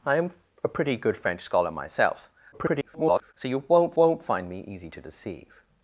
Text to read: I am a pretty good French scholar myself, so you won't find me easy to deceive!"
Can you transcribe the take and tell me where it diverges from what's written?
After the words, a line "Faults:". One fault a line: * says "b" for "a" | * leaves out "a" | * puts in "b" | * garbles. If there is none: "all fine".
I am a pretty good French scholar myself, [garbled] so you won't won't find me easy to deceive!"
Faults:
* garbles
* puts in "won't"